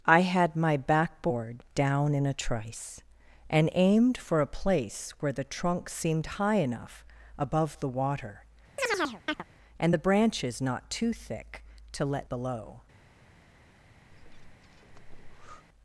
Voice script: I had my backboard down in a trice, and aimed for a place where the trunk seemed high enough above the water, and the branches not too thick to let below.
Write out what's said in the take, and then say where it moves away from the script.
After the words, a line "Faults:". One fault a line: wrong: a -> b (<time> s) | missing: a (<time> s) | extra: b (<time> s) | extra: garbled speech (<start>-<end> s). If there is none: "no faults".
I had my backboard down in a trice, and aimed for a place where the trunk seemed high enough above the water, and the branches not too thick to let below.
Faults:
no faults